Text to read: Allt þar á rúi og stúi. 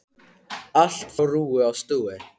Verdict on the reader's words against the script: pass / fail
fail